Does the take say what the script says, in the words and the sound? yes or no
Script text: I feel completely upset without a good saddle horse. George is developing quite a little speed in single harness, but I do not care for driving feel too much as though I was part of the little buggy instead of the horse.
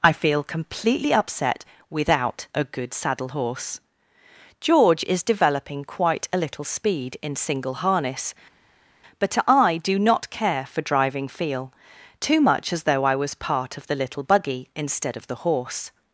yes